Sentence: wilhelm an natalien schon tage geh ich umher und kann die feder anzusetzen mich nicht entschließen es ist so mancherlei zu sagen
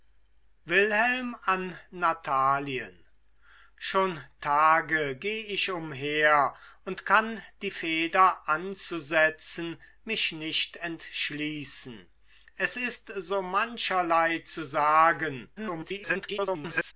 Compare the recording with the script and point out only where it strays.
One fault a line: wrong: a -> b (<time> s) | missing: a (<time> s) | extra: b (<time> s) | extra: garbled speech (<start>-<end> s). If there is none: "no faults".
extra: garbled speech (15.6-16.9 s)